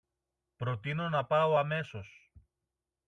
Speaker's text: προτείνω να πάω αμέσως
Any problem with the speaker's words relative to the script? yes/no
no